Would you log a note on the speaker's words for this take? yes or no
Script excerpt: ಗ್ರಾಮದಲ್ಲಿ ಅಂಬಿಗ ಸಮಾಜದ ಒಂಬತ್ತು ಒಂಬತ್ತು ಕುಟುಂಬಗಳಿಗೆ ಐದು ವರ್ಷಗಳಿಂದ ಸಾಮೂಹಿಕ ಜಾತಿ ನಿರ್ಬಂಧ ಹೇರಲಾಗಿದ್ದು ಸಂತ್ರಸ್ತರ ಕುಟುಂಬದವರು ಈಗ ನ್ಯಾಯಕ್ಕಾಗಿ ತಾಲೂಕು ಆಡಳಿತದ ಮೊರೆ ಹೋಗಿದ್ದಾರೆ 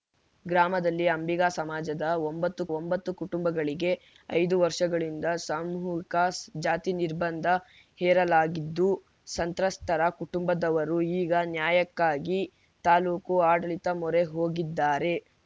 no